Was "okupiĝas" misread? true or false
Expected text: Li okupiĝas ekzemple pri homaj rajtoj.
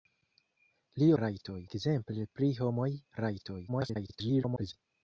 true